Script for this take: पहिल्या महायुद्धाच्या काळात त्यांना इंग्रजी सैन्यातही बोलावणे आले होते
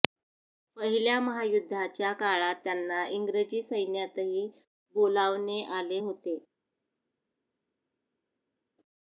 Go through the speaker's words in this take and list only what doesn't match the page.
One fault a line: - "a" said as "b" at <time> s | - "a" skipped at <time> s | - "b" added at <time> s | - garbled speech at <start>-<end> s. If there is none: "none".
none